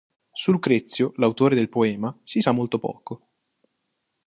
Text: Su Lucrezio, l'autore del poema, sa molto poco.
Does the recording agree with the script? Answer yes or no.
no